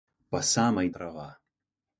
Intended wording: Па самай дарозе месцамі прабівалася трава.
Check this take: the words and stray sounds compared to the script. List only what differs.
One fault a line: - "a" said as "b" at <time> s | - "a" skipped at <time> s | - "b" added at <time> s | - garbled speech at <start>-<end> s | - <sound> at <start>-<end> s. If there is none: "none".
- "дарозе месцамі прабівалася" skipped at 0.9 s